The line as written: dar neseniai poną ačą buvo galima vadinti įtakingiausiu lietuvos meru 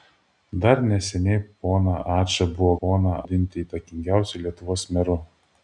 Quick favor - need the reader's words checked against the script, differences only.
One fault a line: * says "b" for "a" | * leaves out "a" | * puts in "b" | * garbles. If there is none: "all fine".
* says "poną" for "galima"